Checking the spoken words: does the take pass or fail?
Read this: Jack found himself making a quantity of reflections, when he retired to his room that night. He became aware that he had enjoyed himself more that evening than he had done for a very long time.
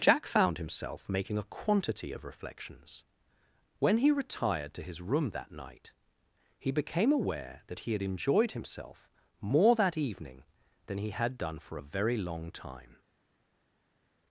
pass